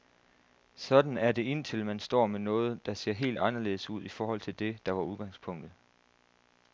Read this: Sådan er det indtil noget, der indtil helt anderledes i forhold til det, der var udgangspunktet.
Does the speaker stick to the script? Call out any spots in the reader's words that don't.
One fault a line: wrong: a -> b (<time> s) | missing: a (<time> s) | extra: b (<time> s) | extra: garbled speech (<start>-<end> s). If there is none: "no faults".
extra: man står med (1.9 s)
wrong: indtil -> ser (2.9 s)
extra: ud (3.9 s)